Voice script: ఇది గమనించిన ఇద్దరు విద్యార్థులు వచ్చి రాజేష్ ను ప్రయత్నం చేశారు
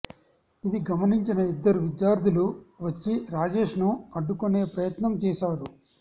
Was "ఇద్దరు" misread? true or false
false